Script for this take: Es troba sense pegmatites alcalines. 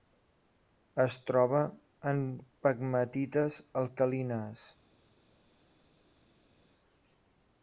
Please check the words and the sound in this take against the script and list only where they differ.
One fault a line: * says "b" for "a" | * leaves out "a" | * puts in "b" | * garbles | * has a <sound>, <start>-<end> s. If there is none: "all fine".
* says "en" for "sense"